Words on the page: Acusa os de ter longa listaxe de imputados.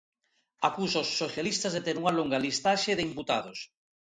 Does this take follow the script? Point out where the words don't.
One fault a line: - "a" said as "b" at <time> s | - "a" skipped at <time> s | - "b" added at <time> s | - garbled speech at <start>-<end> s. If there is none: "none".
- "socialistas" added at 1.2 s
- "unha" added at 2.0 s